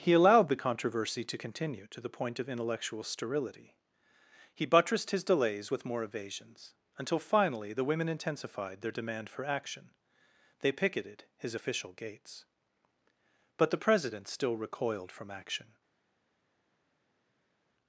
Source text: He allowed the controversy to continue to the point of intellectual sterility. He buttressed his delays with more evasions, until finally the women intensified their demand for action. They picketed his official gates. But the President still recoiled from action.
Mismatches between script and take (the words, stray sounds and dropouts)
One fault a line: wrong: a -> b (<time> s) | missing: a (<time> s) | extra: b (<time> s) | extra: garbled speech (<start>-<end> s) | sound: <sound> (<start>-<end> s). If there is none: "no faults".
no faults